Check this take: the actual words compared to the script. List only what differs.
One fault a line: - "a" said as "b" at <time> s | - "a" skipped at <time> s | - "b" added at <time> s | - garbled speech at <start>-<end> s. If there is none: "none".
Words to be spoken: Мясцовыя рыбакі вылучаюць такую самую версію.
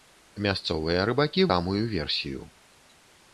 - "вылучаюць такую" skipped at 1.4 s